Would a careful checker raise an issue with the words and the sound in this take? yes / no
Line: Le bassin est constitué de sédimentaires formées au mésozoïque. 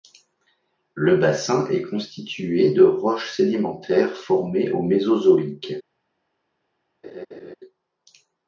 yes